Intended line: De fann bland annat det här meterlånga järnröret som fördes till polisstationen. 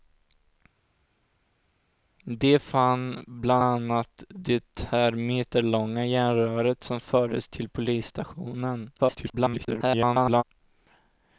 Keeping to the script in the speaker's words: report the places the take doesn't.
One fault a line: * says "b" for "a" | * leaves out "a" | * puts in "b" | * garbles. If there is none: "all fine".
* garbles